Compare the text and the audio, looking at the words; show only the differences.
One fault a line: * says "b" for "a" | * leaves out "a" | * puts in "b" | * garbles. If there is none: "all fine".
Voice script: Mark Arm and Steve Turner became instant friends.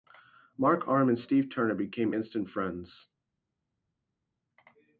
all fine